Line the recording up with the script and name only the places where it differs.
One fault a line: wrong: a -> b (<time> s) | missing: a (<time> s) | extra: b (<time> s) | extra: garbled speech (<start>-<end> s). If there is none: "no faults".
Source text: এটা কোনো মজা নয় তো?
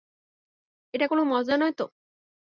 no faults